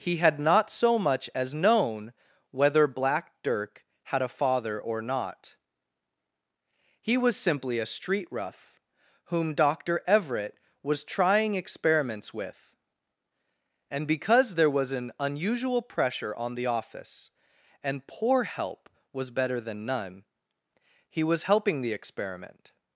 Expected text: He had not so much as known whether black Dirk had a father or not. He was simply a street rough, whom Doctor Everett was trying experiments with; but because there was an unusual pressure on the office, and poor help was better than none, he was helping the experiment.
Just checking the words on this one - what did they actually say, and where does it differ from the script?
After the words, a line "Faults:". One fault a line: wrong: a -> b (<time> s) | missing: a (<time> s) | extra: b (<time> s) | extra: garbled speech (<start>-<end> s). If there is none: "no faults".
He had not so much as known whether black Dirk had a father or not. He was simply a street rough, whom Doctor Everett was trying experiments with; and because there was an unusual pressure on the office, and poor help was better than none, he was helping the experiment.
Faults:
wrong: but -> and (13.9 s)